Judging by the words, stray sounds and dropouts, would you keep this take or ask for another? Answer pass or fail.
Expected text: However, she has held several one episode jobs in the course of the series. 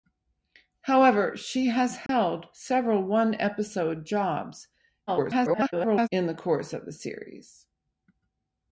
fail